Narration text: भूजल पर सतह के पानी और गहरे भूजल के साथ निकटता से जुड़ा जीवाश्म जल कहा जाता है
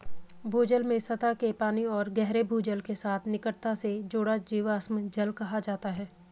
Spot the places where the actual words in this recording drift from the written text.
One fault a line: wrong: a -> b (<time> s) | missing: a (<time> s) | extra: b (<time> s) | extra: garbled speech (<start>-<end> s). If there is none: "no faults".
wrong: पर -> में (0.8 s)